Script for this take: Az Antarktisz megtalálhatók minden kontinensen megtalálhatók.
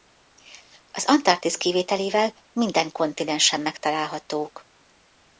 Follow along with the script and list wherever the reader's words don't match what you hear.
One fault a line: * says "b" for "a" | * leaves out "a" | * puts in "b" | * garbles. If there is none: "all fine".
* says "kivételével" for "megtalálhatók"